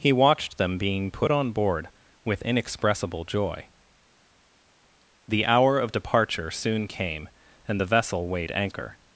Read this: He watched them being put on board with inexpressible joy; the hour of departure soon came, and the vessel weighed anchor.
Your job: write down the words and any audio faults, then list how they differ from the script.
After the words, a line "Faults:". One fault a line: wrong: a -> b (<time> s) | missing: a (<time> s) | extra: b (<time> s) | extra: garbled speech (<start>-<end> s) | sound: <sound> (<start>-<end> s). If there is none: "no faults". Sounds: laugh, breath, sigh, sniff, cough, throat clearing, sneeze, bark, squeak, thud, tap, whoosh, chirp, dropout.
He watched them being put on board with inexpressible joy; the hour of departure soon came, and the vessel weighed anchor.
Faults:
no faults